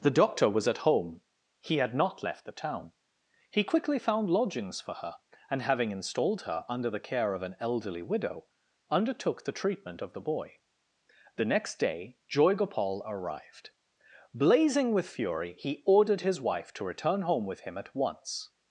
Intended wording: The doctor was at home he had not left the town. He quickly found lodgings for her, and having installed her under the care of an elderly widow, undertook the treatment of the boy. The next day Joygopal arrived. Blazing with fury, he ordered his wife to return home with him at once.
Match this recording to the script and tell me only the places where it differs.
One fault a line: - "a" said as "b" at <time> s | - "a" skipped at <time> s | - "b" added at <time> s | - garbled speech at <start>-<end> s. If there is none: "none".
none